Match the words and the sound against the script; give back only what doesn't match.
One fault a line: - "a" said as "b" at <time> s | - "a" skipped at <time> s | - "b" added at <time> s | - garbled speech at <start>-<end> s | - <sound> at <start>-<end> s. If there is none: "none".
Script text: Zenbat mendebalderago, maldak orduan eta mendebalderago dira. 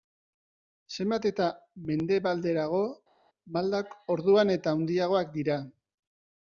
- "eta" added at 1.3 s
- "mendebalderago" said as "handiagoak" at 4.8 s